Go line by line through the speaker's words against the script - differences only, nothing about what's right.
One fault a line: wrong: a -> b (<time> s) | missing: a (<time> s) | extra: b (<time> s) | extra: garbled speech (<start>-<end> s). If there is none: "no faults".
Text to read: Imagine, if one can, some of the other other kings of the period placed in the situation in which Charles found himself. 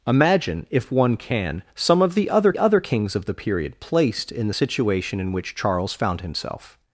no faults